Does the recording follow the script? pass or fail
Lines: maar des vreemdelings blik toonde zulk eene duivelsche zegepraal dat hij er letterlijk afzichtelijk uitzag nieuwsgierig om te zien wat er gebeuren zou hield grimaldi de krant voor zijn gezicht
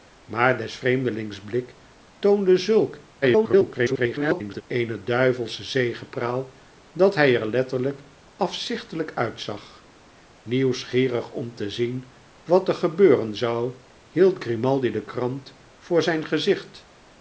fail